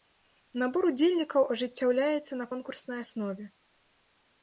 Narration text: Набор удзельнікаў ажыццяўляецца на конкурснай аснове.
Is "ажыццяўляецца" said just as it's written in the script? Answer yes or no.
yes